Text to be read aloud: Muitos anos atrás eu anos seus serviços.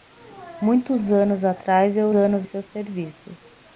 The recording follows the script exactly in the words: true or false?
true